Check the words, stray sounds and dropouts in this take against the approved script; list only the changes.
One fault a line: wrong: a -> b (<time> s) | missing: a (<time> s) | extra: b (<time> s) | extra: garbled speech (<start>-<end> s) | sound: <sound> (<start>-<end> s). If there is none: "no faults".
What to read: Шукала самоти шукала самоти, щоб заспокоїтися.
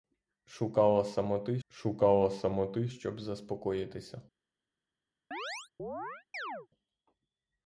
sound: chirp (5.3-6.7 s)